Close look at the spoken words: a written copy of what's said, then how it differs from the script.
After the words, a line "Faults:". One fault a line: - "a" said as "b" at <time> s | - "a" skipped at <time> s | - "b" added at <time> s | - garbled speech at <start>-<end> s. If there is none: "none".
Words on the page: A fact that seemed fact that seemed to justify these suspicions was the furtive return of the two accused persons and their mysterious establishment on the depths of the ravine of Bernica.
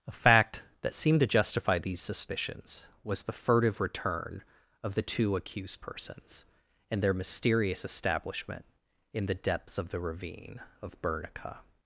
A fact that seemed to justify these suspicions was the furtive return of the two accused persons and their mysterious establishment in the depths of the ravine of Bernica.
Faults:
- "fact that seemed" skipped at 1.2 s
- "on" said as "in" at 9.1 s